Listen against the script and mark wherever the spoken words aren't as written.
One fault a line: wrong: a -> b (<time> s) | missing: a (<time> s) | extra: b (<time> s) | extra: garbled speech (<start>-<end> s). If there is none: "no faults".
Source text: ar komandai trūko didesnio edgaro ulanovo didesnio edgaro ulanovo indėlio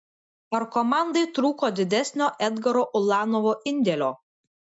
missing: didesnio edgaro ulanovo (3.5 s)